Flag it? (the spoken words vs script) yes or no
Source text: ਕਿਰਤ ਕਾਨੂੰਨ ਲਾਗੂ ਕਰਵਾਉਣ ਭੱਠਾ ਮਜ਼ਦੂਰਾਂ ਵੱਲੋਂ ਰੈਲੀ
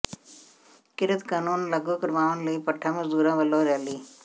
yes